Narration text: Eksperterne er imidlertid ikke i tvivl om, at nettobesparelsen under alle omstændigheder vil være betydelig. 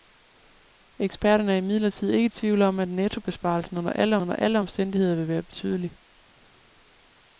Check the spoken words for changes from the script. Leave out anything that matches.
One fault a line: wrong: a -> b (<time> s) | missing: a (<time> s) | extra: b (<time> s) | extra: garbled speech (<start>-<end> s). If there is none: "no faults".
extra: under alle (4.2 s)